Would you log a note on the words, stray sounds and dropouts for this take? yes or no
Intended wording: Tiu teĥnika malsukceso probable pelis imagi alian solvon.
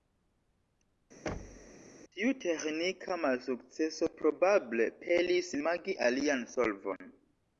yes